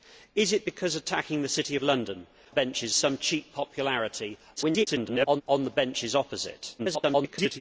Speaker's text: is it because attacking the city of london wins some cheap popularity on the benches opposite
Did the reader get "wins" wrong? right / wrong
wrong